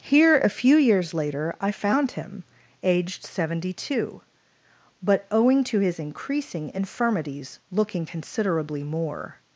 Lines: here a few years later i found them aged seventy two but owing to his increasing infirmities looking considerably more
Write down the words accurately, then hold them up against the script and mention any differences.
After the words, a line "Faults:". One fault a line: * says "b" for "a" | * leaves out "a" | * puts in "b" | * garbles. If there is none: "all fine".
here a few years later i found him aged seventy two but owing to his increasing infirmities looking considerably more
Faults:
* says "him" for "them"